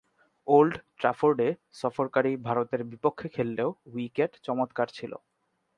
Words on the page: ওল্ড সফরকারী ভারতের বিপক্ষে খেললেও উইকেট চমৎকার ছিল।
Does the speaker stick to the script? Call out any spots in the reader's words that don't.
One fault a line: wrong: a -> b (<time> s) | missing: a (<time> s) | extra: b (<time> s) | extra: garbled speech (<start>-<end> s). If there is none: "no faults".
extra: ট্রাফোর্ডে (1.0 s)